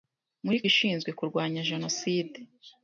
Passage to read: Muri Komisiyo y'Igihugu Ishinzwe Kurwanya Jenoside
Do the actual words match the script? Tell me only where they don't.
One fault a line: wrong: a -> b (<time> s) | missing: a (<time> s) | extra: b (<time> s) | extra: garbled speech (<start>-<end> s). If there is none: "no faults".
missing: Komisiyo y'Igihugu (0.6 s)